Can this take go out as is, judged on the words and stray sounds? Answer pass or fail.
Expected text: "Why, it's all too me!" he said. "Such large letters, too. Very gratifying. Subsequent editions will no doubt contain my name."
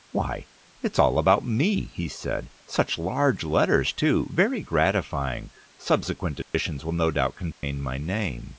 fail